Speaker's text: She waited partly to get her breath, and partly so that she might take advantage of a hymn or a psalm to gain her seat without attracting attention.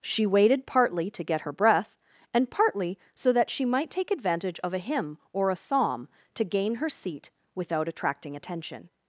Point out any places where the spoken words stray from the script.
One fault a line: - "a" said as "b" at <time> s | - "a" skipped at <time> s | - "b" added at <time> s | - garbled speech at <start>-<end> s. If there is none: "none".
none